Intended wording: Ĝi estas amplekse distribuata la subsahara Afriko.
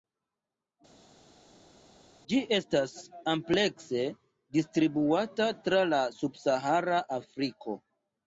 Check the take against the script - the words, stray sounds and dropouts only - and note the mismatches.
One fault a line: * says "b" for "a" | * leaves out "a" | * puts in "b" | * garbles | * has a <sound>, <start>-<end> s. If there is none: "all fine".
* puts in "tra"